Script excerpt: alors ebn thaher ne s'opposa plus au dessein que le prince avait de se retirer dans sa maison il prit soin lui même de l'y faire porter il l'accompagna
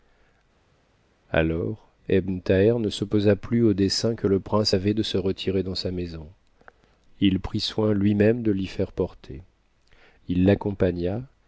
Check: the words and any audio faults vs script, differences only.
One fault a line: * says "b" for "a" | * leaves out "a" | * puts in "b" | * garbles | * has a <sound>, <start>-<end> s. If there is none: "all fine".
all fine